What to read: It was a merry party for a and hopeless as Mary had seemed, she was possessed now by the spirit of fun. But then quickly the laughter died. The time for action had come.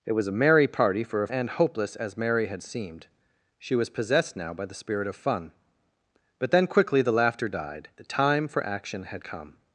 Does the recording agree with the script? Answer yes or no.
yes